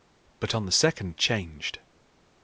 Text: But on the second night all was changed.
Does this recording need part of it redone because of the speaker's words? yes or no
yes